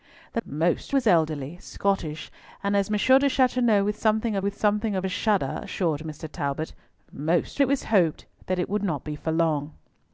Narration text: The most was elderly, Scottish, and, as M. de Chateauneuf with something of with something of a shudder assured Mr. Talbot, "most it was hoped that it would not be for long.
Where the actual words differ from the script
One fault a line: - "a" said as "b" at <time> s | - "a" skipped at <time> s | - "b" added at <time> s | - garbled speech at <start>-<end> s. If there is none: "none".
none